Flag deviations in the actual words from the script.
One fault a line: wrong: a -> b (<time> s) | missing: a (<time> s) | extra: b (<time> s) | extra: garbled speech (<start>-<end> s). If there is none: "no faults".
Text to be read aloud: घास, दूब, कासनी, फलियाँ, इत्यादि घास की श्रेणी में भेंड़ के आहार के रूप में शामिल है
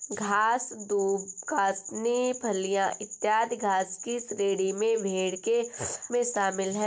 missing: आहार के रूप (5.6 s)